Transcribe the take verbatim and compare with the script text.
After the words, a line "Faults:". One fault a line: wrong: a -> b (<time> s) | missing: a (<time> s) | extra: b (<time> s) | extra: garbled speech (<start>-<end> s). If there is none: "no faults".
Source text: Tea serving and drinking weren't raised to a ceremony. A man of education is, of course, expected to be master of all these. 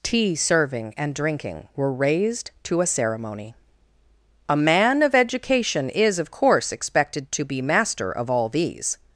Tea serving and drinking were raised to a ceremony. A man of education is, of course, expected to be master of all these.
Faults:
wrong: weren't -> were (1.8 s)